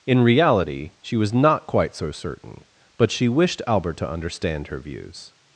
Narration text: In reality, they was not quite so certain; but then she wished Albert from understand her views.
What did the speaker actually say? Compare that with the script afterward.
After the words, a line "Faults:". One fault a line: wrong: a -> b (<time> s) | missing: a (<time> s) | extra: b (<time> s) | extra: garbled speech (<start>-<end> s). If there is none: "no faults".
In reality, she was not quite so certain; but she wished Albert to understand her views.
Faults:
wrong: they -> she (1.0 s)
missing: then (3.1 s)
wrong: from -> to (4.0 s)